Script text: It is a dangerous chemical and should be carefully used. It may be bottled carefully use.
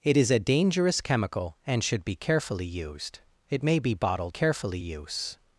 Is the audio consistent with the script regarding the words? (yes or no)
yes